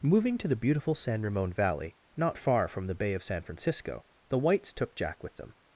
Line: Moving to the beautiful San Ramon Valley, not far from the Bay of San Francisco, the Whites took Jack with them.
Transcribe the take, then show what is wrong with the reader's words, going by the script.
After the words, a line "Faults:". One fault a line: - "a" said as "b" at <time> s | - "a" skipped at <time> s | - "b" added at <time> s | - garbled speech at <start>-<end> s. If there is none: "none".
Moving to the beautiful San Ramon Valley, not far from the Bay of San Francisco, the Whites took Jack with them.
Faults:
none